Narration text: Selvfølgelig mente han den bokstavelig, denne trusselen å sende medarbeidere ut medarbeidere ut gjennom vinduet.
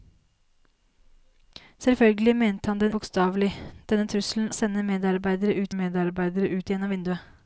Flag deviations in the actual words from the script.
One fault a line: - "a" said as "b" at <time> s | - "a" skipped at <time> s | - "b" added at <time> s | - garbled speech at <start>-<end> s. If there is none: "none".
none